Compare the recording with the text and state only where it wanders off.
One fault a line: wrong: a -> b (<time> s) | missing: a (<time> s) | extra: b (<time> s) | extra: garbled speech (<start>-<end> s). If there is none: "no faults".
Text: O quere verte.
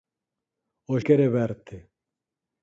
no faults